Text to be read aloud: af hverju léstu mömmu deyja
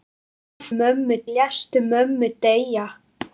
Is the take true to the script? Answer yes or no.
no